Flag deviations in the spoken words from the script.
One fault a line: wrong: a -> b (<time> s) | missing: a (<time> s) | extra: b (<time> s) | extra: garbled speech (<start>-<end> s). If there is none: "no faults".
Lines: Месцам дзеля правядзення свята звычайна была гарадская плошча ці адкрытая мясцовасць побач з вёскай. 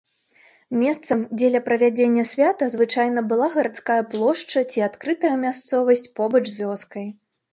no faults